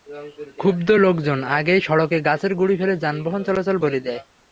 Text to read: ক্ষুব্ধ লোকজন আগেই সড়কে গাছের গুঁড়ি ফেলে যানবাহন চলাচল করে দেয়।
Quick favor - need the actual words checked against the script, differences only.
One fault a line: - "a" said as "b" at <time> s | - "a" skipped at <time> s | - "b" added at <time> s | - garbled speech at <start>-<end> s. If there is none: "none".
none